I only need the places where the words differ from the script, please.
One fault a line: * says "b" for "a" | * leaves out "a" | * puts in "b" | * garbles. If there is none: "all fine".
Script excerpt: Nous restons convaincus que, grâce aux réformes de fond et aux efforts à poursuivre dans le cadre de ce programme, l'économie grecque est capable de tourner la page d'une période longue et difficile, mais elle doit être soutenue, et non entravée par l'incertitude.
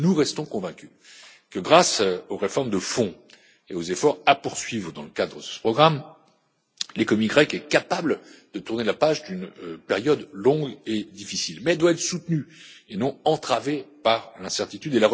all fine